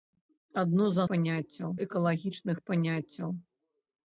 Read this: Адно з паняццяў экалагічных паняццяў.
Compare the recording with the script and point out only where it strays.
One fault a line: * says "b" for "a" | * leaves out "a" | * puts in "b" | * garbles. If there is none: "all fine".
all fine